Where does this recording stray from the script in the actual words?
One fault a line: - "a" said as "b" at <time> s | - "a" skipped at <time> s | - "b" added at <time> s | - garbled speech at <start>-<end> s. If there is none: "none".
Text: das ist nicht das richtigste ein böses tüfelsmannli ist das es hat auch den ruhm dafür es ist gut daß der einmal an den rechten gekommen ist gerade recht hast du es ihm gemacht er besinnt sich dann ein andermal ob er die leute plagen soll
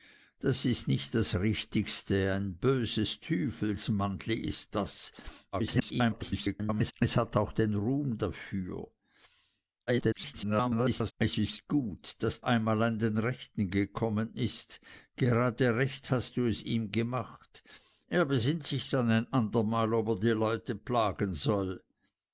- garbled speech at 5.5-6.9 s
- garbled speech at 9.9-11.1 s
- "der" skipped at 12.4 s